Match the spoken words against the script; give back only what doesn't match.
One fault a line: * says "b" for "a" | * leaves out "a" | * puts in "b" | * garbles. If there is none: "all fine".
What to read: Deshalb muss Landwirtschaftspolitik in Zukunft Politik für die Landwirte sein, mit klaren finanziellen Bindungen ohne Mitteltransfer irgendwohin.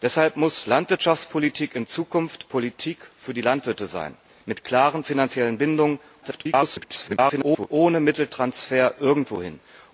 * garbles